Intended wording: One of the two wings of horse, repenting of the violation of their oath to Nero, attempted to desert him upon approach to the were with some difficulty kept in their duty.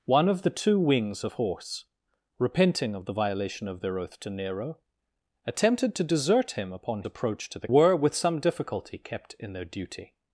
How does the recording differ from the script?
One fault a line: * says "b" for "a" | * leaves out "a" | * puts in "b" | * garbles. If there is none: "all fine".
all fine